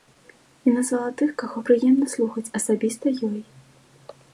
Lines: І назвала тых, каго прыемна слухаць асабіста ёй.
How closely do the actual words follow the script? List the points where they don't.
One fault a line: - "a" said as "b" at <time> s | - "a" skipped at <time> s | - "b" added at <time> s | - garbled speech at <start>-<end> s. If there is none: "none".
none